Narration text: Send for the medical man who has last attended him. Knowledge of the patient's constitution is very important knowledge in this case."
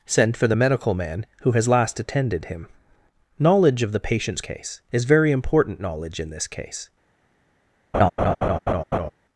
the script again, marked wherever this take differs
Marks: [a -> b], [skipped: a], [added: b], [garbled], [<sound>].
Send for the medical man who has last attended him. Knowledge of the patient's [constitution -> case] is very important knowledge in this case." [laugh]